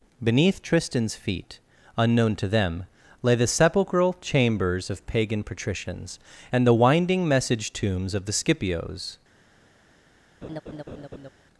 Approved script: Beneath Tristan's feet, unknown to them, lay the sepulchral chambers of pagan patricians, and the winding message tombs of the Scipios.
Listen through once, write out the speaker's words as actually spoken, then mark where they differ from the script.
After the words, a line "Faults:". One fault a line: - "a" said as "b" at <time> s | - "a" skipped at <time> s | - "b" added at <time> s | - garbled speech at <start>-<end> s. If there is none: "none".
Beneath Tristan's feet, unknown to them, lay the sepulchral chambers of pagan patricians, and the winding message tombs of the Scipios.
Faults:
none